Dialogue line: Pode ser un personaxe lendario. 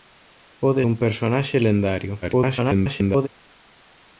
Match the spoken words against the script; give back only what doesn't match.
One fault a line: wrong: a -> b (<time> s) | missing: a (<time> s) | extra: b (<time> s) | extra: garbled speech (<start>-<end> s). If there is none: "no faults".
missing: ser (0.8 s)
extra: garbled speech (2.2-3.3 s)